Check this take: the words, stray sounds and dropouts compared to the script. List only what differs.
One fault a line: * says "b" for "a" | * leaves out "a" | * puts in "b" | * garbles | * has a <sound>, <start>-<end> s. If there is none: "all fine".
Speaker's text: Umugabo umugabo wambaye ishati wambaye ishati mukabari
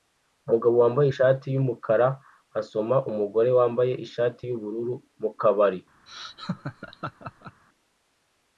* leaves out "umugabo"
* puts in "yumukara asoma umugore"
* puts in "yubururu"
* has a laugh, 6.1-7.6 s